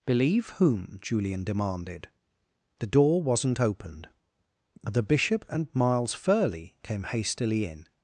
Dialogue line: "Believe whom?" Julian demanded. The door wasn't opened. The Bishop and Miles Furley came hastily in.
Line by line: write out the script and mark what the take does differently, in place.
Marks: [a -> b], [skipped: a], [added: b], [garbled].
"Believe whom?" Julian demanded. The door wasn't opened. The Bishop and Miles Furley came hastily in.